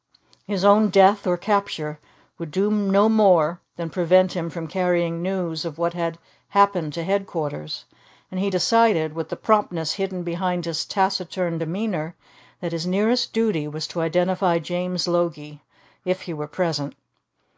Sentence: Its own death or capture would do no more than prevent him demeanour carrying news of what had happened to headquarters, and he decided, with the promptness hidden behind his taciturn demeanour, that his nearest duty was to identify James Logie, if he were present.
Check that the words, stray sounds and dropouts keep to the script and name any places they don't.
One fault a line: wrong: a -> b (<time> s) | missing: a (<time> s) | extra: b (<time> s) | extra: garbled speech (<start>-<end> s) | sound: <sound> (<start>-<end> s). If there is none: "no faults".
wrong: Its -> His (0.5 s)
wrong: demeanour -> from (4.5 s)